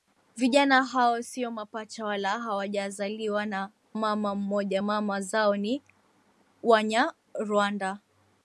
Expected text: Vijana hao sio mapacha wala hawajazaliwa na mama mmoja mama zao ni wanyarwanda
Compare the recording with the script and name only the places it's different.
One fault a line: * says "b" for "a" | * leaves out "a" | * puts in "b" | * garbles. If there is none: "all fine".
all fine